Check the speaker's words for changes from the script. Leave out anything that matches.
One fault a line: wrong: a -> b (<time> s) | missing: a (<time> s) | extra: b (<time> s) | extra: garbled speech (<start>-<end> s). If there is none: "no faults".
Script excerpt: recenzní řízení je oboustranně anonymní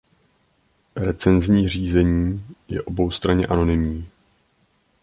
no faults